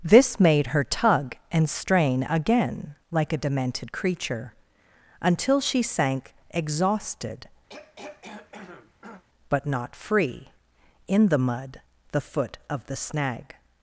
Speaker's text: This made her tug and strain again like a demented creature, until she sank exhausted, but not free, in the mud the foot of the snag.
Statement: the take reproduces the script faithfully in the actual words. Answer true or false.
true